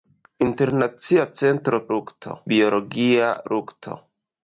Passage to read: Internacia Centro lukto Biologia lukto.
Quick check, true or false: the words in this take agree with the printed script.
true